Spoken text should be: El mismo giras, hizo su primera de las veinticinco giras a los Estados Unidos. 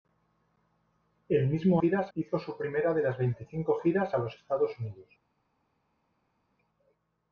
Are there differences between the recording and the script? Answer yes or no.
no